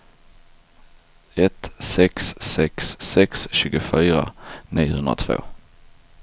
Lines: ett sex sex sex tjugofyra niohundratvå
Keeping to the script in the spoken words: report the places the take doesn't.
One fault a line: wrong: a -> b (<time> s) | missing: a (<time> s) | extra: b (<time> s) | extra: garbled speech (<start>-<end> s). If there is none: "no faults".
no faults